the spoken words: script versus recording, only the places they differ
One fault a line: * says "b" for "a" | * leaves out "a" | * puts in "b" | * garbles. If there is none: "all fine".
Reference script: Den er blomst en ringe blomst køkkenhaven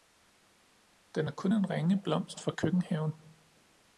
* says "kun" for "blomst"
* puts in "fra"